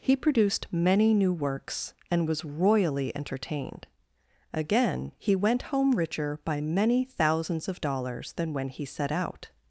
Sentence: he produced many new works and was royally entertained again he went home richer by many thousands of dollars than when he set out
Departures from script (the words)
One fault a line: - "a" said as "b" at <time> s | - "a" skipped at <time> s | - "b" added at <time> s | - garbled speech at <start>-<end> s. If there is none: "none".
none